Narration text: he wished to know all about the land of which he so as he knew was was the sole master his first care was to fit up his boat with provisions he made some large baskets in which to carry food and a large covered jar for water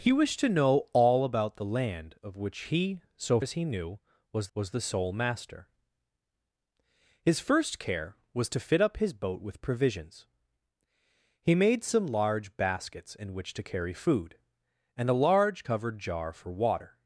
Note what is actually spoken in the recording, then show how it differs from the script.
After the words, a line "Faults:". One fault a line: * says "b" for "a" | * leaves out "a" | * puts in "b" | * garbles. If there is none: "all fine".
he wished to know all about the land of which he so as he knew was was the sole master his first care was to fit up his boat with provisions he made some large baskets in which to carry food and a large covered jar for water
Faults:
all fine